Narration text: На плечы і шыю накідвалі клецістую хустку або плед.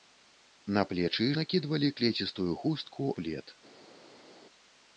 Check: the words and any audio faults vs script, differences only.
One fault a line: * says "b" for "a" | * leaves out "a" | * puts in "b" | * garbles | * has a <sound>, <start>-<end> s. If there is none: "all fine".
* leaves out "шыю"
* leaves out "або"